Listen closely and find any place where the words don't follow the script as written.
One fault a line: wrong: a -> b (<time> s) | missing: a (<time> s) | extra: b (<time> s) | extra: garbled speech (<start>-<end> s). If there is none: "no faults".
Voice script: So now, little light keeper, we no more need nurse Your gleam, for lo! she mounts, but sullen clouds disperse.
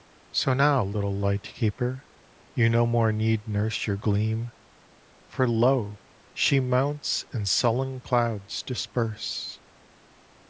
wrong: we -> you (2.5 s)
wrong: but -> and (7.3 s)